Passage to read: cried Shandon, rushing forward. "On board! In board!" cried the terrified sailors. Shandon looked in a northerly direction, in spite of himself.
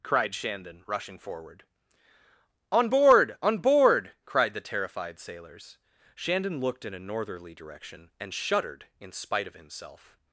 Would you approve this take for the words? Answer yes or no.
no